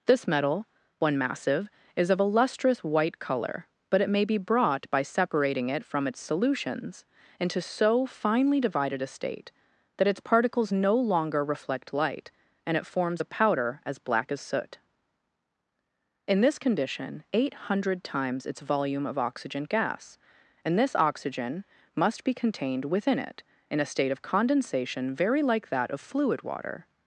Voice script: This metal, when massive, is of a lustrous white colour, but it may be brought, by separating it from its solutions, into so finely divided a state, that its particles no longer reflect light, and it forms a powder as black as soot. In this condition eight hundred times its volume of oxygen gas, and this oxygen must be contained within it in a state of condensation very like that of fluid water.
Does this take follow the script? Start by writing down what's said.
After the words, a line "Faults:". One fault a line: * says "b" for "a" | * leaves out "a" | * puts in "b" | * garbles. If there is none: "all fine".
This metal, when massive, is of a lustrous white colour, but it may be brought, by separating it from its solutions, into so finely divided a state, that its particles no longer reflect light, and it forms a powder as black as soot. In this condition eight hundred times its volume of oxygen gas, and this oxygen must be contained within it in a state of condensation very like that of fluid water.
Faults:
all fine